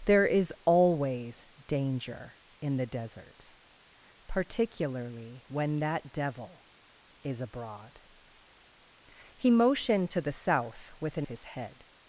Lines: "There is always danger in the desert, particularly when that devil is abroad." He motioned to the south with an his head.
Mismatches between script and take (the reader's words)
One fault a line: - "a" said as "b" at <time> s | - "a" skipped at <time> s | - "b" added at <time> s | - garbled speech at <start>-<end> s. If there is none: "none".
none